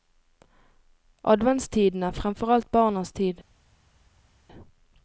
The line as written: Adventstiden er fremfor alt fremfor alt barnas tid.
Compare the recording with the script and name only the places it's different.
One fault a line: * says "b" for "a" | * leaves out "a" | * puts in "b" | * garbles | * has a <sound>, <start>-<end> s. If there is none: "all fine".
* leaves out "fremfor alt"